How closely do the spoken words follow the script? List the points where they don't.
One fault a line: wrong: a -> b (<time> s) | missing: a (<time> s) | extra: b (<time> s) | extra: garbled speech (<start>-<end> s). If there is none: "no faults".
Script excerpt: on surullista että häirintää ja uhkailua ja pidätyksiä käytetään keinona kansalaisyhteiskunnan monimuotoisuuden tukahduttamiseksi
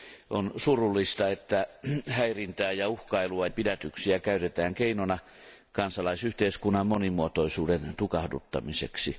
missing: ja (3.5 s)